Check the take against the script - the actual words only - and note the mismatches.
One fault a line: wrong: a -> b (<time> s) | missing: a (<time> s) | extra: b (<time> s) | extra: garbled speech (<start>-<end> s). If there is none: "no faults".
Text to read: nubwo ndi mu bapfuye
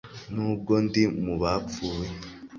no faults